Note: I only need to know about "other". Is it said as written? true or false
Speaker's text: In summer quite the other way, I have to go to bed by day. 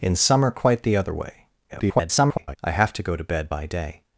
true